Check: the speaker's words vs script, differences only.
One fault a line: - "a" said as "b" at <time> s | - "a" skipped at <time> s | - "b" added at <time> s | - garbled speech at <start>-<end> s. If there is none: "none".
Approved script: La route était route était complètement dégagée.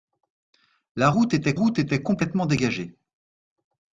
none